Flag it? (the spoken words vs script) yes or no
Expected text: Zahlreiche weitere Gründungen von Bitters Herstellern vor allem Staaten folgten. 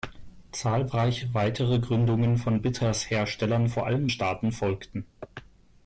no